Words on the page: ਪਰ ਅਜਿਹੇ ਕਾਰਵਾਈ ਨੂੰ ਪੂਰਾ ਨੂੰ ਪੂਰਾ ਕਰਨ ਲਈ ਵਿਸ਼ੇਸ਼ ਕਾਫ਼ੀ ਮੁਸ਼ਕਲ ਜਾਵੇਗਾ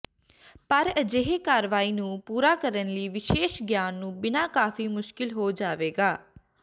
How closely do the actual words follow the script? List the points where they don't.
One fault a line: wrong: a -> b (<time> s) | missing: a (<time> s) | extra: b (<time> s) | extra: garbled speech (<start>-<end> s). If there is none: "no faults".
missing: ਨੂੰ ਪੂਰਾ (2.5 s)
extra: ਗਿਆਨ ਨੂੰ ਬਿਨਾ (3.6 s)
extra: ਹੋ (5.3 s)